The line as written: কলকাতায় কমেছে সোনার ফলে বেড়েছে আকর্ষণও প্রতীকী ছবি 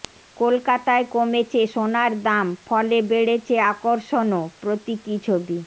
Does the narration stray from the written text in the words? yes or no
yes